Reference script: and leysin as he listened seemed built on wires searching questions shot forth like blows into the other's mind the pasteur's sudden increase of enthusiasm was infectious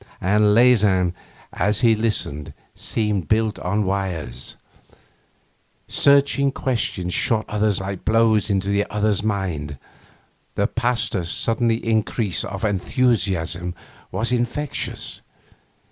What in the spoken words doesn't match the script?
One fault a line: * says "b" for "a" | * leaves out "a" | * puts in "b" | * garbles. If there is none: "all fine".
* says "other's" for "forth"